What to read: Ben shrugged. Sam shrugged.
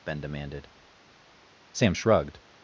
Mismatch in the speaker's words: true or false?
true